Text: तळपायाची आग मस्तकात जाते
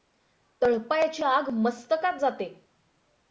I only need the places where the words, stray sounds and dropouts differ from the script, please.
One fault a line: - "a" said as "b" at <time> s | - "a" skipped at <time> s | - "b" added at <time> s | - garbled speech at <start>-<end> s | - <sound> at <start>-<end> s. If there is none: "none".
none